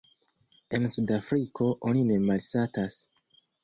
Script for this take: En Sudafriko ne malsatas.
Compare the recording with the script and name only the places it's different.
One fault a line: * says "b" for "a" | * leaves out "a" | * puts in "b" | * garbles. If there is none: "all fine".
* puts in "oni"